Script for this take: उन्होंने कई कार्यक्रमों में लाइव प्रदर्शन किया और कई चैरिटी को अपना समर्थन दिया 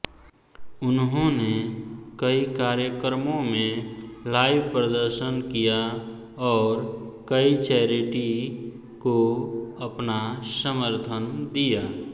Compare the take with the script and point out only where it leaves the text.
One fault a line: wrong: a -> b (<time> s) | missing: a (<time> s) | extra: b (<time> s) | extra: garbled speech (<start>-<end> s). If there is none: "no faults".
no faults